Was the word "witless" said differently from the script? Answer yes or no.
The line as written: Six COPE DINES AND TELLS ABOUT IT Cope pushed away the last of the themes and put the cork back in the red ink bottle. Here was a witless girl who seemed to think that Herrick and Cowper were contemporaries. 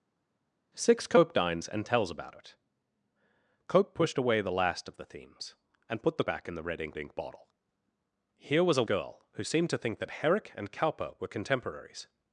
yes